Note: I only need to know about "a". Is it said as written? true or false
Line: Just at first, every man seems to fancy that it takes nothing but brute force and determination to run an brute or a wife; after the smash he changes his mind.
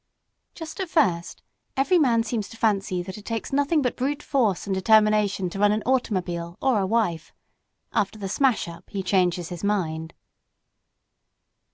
true